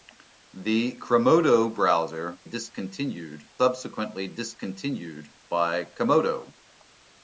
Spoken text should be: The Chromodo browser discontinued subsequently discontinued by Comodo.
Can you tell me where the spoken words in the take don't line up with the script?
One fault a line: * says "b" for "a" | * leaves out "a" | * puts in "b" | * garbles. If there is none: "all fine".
all fine